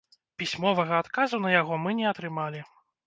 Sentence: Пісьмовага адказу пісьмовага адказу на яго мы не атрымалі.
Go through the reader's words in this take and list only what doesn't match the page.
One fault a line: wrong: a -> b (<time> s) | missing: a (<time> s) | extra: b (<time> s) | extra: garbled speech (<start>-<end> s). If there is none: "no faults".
missing: пісьмовага адказу (1.4 s)